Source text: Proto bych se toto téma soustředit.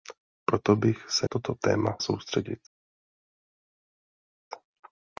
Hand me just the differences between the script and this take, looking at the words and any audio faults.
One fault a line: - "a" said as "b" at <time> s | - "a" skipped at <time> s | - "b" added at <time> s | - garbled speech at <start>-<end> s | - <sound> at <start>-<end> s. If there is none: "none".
none